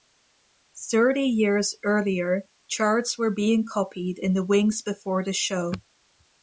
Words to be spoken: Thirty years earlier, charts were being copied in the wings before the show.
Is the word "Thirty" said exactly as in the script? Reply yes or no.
yes